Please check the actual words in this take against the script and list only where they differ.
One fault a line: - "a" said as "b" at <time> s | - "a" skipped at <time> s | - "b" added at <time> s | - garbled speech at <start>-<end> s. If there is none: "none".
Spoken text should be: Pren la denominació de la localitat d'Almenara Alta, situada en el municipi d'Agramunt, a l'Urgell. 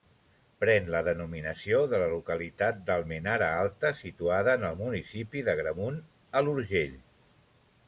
none